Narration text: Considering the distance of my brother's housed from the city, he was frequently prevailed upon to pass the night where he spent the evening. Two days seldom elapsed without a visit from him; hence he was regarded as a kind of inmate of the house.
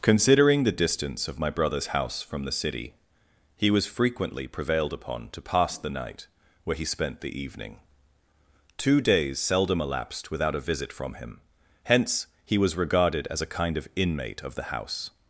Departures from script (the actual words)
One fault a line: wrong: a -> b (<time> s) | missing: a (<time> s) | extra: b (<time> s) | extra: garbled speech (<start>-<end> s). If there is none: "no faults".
wrong: housed -> house (1.9 s)